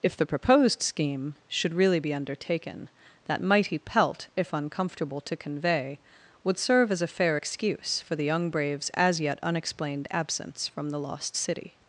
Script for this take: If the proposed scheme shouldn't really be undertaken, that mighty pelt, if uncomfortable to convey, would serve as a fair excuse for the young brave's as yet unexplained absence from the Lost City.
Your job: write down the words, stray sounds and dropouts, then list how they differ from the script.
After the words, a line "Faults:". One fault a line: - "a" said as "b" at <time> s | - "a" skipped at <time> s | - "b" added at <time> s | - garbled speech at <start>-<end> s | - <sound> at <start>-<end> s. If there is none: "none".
If the proposed scheme should really be undertaken, that mighty pelt, if uncomfortable to convey, would serve as a fair excuse for the young brave's as yet unexplained absence from the Lost City.
Faults:
- "shouldn't" said as "should" at 1.5 s